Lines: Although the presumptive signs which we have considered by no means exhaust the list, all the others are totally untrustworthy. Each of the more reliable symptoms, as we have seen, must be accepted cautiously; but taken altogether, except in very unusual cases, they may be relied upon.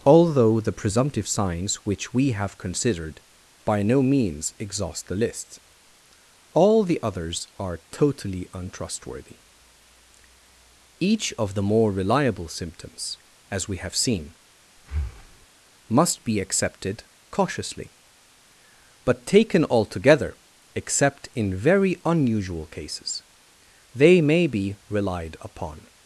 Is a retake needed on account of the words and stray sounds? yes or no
yes